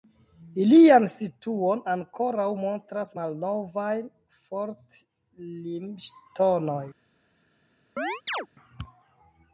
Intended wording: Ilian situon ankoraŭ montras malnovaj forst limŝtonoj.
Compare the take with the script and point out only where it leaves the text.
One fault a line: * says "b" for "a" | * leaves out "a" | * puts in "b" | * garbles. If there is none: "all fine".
all fine